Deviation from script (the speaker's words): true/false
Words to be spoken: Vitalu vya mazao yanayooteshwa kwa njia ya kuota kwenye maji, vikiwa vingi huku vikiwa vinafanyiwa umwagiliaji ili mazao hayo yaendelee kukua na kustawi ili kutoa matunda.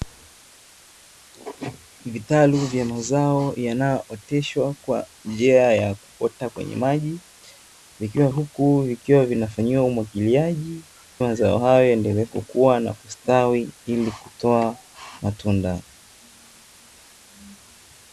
true